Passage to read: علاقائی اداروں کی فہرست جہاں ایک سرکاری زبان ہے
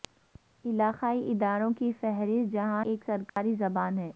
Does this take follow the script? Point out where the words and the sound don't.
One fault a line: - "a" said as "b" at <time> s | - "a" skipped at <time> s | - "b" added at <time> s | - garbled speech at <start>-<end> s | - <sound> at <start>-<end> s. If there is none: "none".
- dropout at 3.3-3.4 s